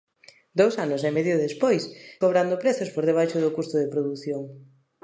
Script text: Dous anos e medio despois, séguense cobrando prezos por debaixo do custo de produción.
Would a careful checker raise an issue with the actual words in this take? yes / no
yes